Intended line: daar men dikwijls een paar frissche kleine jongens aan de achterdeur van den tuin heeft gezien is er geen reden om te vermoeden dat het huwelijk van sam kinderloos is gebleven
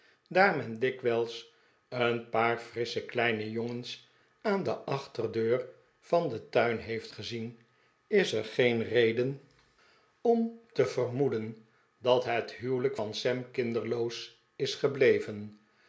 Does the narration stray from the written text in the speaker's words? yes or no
no